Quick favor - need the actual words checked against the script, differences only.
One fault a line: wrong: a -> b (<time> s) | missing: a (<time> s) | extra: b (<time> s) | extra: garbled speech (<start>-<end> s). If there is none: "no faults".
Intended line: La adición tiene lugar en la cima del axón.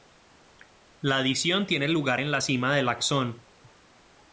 no faults